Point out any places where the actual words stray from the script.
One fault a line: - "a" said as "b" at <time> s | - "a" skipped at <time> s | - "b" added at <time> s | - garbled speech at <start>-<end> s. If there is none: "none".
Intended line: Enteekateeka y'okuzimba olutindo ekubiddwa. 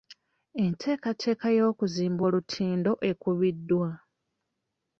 none